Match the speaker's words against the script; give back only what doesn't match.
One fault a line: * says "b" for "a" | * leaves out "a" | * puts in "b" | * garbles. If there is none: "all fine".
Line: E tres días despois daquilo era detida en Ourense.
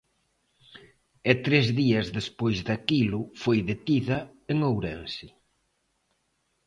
* says "foi" for "era"